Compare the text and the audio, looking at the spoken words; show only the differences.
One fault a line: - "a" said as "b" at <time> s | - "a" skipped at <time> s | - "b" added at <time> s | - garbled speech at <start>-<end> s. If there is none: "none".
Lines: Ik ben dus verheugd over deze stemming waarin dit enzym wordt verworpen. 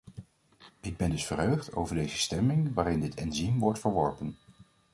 none